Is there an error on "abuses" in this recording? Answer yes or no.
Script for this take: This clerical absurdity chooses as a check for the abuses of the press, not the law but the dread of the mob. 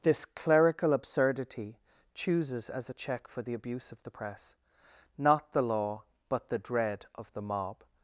yes